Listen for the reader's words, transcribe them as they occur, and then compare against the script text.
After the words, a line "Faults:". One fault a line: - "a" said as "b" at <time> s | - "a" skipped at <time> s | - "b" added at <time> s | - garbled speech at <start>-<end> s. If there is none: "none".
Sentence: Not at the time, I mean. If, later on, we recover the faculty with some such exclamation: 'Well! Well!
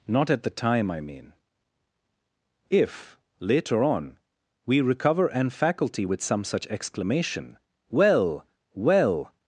Not at the time, I mean. If, later on, we recover an faculty with some such exclamation: 'Well! Well!
Faults:
- "the" said as "an" at 5.3 s